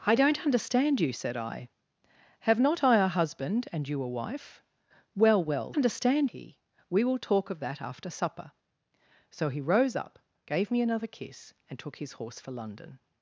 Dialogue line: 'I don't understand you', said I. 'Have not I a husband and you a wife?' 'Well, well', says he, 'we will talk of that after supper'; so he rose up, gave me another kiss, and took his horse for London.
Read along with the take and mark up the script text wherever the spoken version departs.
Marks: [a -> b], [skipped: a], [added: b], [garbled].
'I don't understand you', said I. 'Have not I a husband and you a wife?' 'Well, well', [says -> understand] he, 'we will talk of that after supper'; so he rose up, gave me another kiss, and took his horse for London.